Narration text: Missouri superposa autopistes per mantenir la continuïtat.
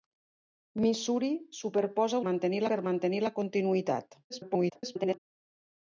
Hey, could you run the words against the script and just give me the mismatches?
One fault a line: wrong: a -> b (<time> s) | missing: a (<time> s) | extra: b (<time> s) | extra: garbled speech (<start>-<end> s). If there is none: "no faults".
wrong: autopistes -> mantenir (2.3 s)
extra: garbled speech (4.3-5.2 s)